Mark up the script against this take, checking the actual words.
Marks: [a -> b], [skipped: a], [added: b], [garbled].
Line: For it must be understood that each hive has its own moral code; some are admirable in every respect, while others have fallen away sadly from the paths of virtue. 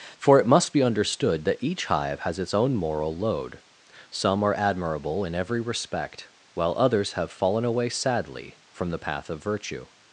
For it must be understood that each hive has its own moral [code; -> load] some are admirable in every respect, while others have fallen away sadly from the [paths -> path] of virtue.